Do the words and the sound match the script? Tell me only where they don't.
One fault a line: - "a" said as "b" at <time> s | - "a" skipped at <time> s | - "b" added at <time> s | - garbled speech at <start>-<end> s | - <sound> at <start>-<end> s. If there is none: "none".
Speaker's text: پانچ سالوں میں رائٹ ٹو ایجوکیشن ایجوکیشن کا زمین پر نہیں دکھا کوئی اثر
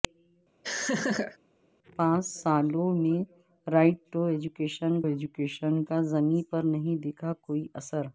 - laugh at 0.6-1.4 s